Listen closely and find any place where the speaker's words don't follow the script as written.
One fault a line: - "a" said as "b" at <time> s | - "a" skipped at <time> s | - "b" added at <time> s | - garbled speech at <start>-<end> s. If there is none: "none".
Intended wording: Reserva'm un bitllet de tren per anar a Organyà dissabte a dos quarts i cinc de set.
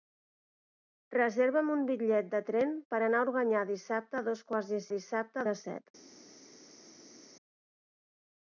- "cinc" said as "dissabte" at 5.0 s